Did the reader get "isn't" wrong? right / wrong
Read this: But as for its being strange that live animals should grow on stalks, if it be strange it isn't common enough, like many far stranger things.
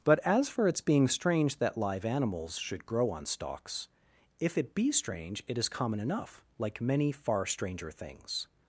wrong